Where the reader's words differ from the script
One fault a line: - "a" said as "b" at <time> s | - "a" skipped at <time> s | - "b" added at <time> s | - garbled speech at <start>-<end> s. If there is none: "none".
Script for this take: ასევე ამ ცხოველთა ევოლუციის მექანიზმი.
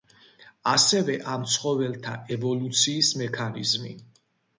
none